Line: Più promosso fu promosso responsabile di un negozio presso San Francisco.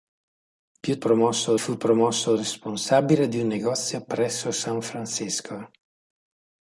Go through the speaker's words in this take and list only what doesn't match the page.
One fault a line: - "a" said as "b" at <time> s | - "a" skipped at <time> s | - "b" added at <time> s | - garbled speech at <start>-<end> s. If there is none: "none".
none